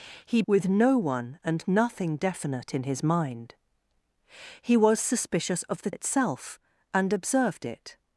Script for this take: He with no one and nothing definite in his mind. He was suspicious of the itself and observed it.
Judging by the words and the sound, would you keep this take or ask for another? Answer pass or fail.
pass